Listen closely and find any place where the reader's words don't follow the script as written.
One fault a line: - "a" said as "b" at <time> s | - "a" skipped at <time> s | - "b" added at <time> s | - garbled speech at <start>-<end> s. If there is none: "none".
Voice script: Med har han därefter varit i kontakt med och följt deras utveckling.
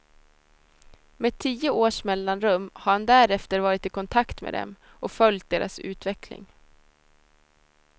- "tio års mellanrum" added at 1.4 s
- "dem" added at 4.5 s